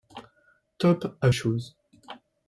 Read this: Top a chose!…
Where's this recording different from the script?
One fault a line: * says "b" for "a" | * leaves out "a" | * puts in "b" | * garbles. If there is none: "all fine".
all fine